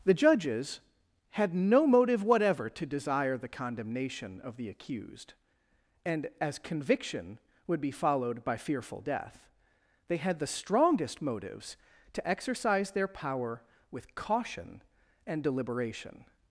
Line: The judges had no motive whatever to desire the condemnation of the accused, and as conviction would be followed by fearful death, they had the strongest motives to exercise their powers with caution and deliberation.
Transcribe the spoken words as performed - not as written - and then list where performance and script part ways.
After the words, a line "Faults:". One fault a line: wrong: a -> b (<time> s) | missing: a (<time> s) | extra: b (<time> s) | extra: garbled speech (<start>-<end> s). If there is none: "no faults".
The judges had no motive whatever to desire the condemnation of the accused, and as conviction would be followed by fearful death, they had the strongest motives to exercise their power with caution and deliberation.
Faults:
wrong: powers -> power (13.1 s)